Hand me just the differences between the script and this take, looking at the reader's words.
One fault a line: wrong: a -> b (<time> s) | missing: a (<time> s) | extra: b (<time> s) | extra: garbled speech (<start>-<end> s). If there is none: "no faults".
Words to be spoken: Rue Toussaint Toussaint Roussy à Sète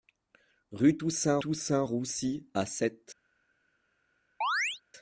no faults